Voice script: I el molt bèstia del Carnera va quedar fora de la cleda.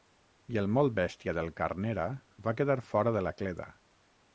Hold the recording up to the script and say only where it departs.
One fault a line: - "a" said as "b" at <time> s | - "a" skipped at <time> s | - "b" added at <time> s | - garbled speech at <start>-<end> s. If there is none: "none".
none